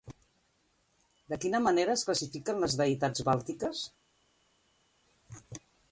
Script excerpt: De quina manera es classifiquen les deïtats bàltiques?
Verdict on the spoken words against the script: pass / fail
pass